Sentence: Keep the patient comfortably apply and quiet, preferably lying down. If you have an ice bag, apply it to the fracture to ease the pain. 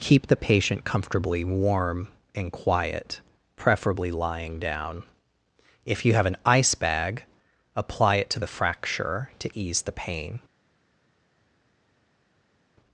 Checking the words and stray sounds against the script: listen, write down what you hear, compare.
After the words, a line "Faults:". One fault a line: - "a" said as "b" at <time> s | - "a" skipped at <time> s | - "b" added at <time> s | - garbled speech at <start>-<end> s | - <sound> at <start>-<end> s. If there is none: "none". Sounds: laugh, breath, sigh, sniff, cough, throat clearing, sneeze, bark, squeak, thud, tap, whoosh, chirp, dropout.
Keep the patient comfortably warm and quiet, preferably lying down. If you have an ice bag, apply it to the fracture to ease the pain.
Faults:
- "apply" said as "warm" at 1.4 s